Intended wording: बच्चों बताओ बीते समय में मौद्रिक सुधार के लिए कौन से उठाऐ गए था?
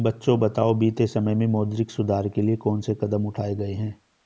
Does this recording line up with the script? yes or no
no